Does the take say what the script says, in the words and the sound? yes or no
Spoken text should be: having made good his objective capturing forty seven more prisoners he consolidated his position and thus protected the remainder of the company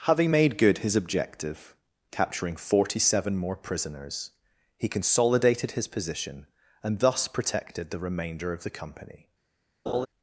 no